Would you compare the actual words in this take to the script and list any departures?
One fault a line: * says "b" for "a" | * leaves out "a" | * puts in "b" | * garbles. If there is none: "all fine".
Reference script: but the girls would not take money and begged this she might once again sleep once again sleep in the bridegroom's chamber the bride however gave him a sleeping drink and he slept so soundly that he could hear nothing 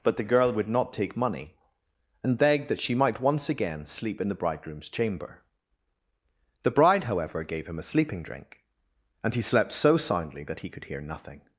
* says "girl" for "girls"
* says "that" for "this"
* leaves out "once again sleep"